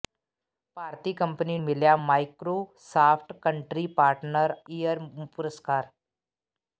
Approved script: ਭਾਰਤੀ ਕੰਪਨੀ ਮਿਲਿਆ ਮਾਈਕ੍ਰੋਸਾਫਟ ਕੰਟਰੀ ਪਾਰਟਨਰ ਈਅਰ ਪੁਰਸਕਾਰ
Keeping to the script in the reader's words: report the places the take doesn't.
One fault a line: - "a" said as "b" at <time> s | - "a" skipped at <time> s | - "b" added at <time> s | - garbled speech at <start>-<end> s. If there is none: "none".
none